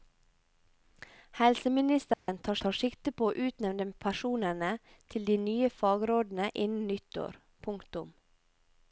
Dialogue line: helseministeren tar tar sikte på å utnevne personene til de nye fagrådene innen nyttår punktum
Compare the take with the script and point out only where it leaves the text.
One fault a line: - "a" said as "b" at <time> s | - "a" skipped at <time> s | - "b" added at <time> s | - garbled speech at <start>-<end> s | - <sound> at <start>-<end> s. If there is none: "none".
- dropout at 2.1-2.3 s